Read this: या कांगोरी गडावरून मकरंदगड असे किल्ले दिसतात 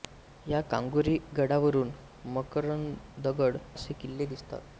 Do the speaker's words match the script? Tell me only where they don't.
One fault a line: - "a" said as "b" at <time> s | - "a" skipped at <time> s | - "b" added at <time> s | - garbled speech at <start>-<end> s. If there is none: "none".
none